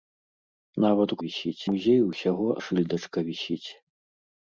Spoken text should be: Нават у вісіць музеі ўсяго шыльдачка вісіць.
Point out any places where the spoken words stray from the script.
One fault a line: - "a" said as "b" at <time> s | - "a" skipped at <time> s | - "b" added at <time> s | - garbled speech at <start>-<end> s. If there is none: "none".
none